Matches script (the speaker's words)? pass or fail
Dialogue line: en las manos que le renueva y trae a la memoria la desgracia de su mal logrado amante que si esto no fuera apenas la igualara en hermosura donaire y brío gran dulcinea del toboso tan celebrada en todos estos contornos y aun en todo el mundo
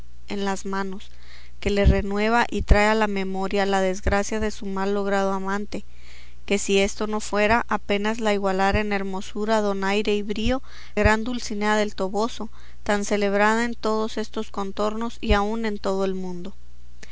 pass